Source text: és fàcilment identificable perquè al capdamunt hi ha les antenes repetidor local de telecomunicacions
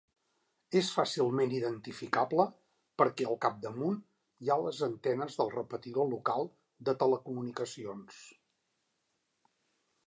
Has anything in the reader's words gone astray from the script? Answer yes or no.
yes